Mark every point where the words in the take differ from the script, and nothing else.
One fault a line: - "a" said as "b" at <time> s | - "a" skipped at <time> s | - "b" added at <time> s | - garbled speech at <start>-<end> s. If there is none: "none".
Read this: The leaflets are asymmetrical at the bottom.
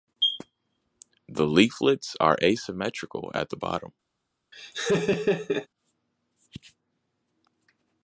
none